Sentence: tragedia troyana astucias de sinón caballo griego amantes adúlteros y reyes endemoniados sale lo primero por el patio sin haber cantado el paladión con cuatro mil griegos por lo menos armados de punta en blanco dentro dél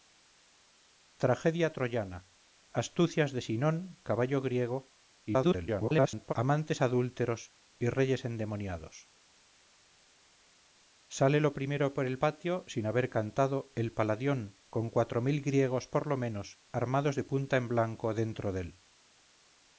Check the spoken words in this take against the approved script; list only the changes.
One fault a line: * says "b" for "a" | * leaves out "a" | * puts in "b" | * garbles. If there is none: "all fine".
* garbles